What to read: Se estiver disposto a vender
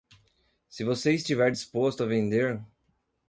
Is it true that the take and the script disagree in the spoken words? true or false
true